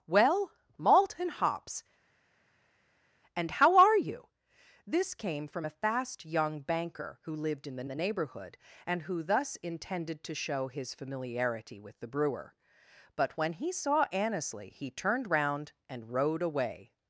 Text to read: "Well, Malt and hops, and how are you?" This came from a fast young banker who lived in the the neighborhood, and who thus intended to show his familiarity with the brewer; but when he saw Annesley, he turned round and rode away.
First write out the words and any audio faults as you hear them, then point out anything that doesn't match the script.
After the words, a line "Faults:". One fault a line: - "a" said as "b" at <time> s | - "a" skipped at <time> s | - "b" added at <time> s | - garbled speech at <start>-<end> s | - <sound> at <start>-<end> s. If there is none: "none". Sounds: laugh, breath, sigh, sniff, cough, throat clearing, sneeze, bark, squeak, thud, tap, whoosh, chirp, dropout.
"Well, Malt and hops, and how are you?" This came from a fast young banker who lived in the the neighborhood, and who thus intended to show his familiarity with the brewer; but when he saw Annesley, he turned round and rode away.
Faults:
none